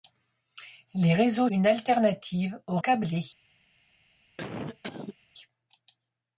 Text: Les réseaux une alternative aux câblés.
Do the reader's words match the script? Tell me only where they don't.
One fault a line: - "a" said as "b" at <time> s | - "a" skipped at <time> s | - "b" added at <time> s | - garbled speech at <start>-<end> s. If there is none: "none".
none